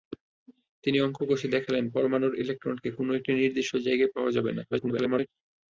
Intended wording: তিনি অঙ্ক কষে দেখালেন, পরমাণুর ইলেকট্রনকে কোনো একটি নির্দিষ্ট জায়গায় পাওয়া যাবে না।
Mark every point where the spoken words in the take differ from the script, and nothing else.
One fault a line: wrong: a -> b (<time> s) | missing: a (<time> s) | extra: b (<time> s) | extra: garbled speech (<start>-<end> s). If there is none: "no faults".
extra: garbled speech (4.7-5.3 s)